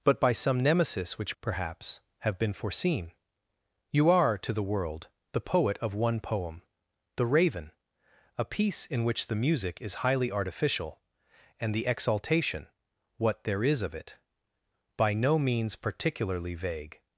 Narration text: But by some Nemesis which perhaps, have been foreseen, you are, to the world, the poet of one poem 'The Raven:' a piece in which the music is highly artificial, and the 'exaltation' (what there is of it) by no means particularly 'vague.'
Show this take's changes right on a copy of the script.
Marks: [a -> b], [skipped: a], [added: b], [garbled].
But by some Nemesis which perhaps, have been foreseen, you are, to the world, the poet of one poem 'The Raven:' a piece in which the music is highly artificial, and the 'exaltation' (what there is of it) by no means particularly 'vague.'